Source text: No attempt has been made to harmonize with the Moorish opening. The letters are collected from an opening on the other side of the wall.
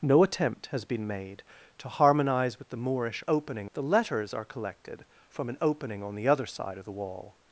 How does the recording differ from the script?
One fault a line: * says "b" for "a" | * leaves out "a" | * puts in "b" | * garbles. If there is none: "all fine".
all fine